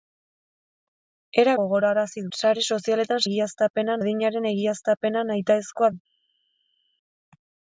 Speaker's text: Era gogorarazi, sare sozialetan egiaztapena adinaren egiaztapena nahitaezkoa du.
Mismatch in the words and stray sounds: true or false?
false